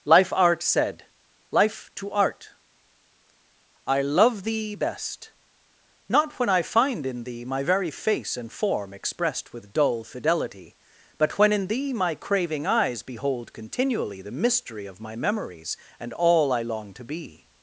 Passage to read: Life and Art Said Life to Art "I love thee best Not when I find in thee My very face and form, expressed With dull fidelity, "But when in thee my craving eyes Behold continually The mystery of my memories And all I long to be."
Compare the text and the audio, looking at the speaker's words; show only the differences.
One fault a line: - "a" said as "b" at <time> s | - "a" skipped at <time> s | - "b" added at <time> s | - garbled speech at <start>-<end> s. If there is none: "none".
- "and" skipped at 0.3 s